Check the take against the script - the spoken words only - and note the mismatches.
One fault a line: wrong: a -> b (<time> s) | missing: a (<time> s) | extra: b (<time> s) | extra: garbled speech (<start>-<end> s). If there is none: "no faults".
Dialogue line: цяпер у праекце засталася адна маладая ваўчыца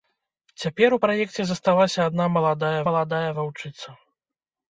extra: маладая (2.9 s)